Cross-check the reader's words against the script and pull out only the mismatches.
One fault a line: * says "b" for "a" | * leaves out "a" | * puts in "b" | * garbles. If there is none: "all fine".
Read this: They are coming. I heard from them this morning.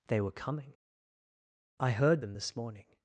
* says "were" for "are"
* leaves out "from"